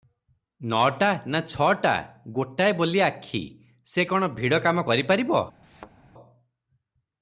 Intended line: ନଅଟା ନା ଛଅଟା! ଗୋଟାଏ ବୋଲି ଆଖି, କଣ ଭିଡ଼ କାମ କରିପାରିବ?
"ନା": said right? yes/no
yes